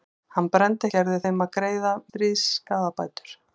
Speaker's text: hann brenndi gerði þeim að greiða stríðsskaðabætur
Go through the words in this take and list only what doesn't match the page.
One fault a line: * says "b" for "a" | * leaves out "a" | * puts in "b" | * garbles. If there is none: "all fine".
all fine